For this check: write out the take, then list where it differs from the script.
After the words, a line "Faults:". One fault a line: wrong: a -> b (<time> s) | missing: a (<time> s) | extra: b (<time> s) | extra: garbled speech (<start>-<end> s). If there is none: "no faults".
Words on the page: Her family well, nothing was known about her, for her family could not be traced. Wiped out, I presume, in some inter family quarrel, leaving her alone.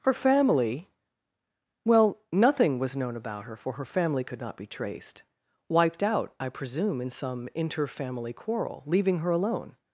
Her family well, nothing was known about her, for her family could not be traced. Wiped out, I presume, in some inter family quarrel, leaving her alone.
Faults:
no faults